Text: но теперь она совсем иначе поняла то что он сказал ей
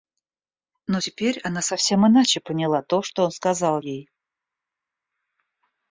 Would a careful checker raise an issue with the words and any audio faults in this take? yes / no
no